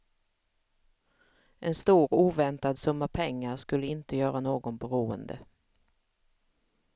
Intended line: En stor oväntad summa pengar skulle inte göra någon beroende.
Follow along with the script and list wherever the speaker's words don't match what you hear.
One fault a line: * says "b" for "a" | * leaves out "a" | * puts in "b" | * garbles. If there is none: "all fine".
all fine